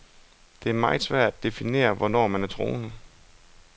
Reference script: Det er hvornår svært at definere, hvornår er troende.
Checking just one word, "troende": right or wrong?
right